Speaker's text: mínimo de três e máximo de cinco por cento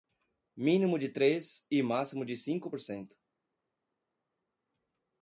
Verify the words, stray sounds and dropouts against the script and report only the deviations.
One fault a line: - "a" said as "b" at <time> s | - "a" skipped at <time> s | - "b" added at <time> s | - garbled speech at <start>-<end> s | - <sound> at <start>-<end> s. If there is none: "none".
none